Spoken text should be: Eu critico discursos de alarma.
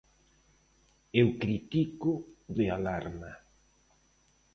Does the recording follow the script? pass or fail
fail